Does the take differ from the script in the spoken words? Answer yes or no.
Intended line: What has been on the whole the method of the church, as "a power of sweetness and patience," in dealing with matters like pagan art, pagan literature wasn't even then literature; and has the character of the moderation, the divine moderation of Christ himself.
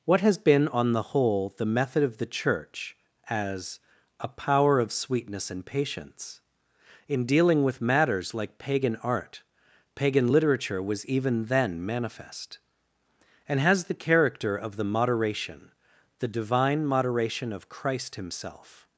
yes